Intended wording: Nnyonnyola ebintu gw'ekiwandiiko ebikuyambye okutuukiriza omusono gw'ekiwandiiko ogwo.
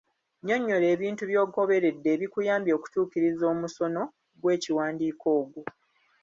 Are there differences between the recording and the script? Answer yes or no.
yes